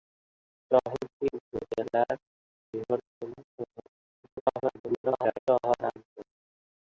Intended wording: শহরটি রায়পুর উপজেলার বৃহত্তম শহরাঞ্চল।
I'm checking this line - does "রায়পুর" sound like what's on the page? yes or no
no